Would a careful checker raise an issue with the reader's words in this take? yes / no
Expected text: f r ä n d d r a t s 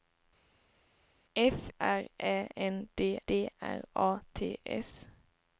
no